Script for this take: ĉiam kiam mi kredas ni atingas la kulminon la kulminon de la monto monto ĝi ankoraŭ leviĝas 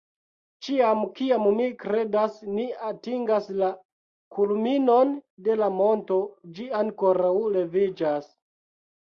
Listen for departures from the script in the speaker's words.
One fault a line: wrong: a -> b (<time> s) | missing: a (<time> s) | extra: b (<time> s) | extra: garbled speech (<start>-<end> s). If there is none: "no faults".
missing: la kulminon (5.1 s)
missing: monto (6.2 s)